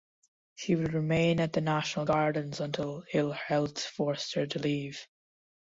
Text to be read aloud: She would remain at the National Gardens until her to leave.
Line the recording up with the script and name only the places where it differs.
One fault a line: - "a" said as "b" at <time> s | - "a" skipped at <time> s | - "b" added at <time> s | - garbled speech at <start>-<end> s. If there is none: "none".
- "ill health forced" added at 3.1 s